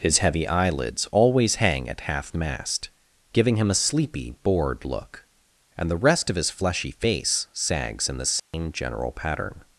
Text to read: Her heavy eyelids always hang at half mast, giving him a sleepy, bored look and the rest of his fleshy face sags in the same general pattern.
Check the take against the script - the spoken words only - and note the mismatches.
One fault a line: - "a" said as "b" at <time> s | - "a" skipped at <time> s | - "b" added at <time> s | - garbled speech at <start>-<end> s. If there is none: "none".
- "Her" said as "His" at 0.0 s